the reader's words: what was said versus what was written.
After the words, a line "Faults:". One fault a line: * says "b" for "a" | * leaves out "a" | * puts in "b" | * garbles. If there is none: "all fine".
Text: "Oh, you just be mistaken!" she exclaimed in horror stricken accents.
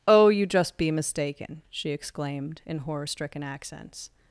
"Oh, you just be mistaken!" she exclaimed in horror stricken accents.
Faults:
all fine